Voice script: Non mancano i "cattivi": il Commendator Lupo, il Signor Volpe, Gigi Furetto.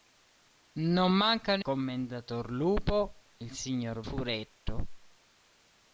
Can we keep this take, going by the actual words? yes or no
no